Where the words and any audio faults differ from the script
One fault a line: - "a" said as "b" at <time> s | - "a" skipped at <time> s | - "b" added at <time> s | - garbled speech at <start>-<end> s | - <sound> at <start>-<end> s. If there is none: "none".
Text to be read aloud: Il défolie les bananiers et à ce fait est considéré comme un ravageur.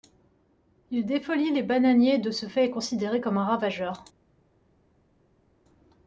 - "à" said as "de" at 2.2 s